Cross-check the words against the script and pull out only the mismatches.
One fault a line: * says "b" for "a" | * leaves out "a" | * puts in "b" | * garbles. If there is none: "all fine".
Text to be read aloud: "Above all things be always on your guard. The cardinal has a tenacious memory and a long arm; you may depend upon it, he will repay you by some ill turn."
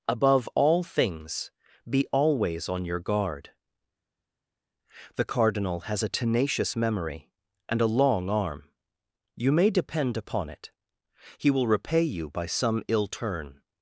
all fine